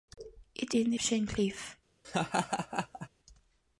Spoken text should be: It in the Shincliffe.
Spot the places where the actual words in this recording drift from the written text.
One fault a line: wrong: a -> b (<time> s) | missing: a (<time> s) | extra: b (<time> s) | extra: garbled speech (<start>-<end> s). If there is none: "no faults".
no faults